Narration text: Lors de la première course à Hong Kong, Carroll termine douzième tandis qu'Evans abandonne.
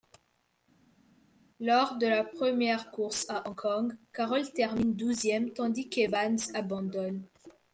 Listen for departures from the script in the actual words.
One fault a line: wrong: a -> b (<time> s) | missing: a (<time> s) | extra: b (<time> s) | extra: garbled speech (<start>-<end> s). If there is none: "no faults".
no faults